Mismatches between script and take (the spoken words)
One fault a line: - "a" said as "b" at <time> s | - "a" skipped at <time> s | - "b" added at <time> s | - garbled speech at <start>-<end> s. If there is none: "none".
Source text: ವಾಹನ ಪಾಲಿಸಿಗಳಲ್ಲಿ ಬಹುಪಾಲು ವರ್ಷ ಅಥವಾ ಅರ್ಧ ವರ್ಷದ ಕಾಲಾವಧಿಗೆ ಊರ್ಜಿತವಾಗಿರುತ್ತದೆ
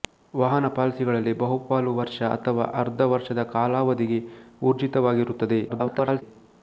- garbled speech at 5.7-6.2 s